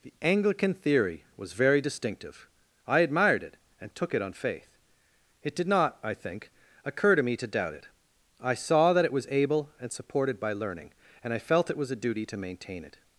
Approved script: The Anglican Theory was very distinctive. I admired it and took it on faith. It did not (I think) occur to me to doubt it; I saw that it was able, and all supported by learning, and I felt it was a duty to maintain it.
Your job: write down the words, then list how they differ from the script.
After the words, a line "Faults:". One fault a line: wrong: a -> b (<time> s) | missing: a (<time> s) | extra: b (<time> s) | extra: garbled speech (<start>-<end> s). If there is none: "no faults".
The Anglican Theory was very distinctive. I admired it and took it on faith. It did not (I think) occur to me to doubt it; I saw that it was able, and supported by learning, and I felt it was a duty to maintain it.
Faults:
missing: all (9.9 s)